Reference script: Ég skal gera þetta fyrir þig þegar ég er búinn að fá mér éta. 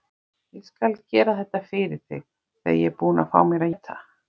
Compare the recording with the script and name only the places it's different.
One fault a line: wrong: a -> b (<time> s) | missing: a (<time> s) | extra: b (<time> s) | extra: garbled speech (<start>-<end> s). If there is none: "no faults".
no faults